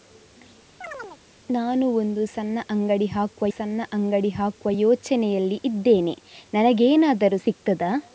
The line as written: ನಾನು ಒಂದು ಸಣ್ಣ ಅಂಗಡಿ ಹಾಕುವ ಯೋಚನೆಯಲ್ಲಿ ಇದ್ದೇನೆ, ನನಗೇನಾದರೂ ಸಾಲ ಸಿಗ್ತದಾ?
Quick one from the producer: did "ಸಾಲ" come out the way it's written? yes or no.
no